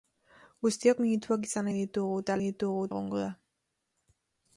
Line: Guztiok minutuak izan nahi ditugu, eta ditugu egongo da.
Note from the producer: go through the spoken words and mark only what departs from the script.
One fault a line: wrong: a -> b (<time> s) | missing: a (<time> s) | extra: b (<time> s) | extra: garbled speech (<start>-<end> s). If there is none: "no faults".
no faults